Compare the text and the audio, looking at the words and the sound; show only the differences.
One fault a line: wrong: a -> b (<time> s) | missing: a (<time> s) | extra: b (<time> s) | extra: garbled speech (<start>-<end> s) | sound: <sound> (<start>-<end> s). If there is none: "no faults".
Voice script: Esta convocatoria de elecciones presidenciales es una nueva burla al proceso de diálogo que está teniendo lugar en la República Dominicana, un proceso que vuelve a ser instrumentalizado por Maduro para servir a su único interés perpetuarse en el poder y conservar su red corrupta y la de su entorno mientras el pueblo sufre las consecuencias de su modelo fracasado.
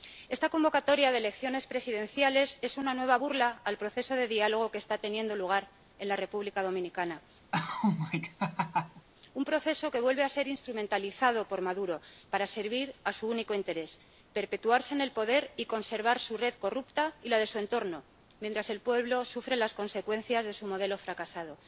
sound: laugh (7.5-9.1 s)